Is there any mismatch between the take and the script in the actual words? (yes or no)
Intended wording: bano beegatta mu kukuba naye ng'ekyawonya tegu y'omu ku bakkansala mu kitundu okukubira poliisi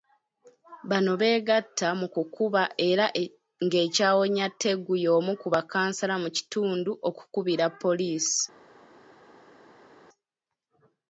yes